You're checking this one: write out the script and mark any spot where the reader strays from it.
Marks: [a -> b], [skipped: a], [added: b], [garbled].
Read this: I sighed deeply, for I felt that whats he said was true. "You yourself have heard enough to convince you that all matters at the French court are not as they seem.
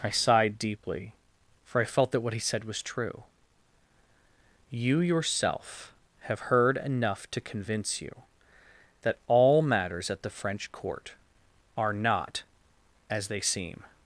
I sighed deeply, for I felt that [whats -> what] he said was true. "You yourself have heard enough to convince you that all matters at the French court are not as they seem.